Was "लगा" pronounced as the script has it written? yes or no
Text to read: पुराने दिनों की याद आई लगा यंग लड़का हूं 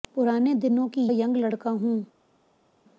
no